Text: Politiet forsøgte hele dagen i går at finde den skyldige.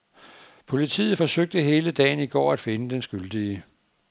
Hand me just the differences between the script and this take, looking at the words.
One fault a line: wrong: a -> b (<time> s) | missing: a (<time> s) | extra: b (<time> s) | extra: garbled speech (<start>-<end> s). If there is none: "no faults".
no faults